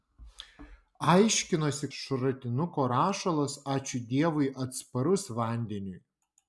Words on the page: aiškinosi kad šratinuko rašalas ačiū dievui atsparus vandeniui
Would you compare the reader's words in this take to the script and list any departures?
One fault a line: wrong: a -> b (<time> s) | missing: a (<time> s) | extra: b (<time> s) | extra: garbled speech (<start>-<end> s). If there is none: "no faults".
missing: kad (1.9 s)